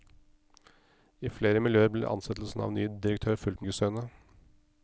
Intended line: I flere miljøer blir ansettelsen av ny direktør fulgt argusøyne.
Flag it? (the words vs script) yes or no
no